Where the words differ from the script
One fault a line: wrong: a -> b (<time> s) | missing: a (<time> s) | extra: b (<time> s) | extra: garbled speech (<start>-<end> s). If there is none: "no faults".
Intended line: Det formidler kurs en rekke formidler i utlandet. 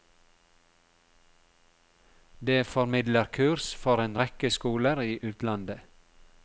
extra: for (3.8 s)
wrong: formidler -> skoler (4.5 s)